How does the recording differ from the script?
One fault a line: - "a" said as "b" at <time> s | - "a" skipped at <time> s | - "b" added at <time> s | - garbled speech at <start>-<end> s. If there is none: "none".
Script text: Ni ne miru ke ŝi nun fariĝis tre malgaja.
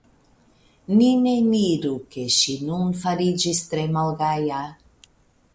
none